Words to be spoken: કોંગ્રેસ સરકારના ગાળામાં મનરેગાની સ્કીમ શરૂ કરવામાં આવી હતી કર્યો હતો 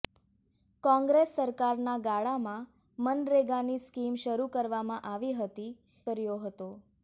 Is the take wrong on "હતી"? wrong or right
right